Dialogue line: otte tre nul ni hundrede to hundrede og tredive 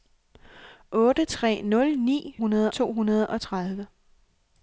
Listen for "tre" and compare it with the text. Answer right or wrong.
right